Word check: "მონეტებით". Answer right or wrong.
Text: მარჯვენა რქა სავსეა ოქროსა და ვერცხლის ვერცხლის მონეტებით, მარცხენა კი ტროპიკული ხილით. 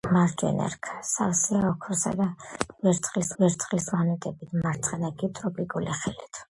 right